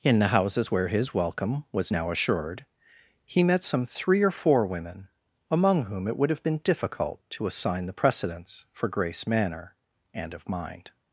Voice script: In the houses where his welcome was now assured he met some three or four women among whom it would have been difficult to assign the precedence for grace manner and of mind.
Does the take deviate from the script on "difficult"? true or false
false